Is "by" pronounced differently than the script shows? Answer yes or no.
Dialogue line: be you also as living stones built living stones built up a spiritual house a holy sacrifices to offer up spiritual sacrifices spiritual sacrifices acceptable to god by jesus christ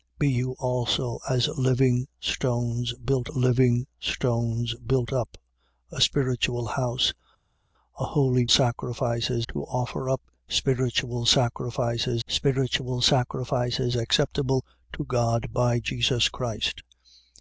no